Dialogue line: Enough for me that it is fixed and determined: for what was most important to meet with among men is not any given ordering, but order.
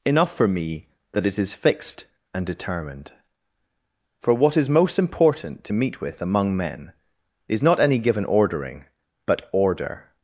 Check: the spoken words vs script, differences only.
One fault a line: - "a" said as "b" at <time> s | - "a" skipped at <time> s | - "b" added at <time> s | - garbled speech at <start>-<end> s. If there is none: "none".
- "was" said as "is" at 4.6 s